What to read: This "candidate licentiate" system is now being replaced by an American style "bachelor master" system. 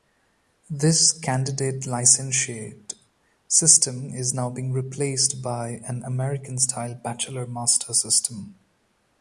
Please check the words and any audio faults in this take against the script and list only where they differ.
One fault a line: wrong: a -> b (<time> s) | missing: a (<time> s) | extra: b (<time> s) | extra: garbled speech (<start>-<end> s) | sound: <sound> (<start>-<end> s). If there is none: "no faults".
no faults